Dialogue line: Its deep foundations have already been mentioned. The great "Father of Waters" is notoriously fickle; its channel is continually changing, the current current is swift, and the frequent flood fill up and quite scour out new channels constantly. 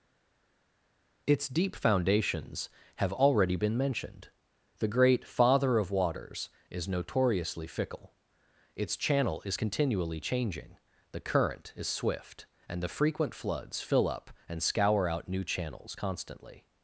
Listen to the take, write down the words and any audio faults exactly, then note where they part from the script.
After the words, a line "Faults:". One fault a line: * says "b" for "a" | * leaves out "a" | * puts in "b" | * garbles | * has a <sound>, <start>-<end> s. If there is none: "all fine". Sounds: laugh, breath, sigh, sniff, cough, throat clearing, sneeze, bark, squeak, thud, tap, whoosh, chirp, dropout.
Its deep foundations have already been mentioned. The great "Father of Waters" is notoriously fickle; its channel is continually changing, the current is swift, and the frequent floods fill up and scour out new channels constantly.
Faults:
* leaves out "current"
* says "floods" for "flood"
* leaves out "quite"